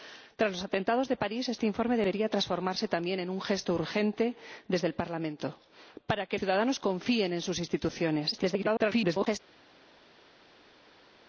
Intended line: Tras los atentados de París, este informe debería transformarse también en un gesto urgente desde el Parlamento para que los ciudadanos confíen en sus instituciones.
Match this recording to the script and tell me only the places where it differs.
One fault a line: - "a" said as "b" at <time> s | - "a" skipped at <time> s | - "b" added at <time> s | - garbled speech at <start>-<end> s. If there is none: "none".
- "los" skipped at 6.4 s
- garbled speech at 8.3-9.4 s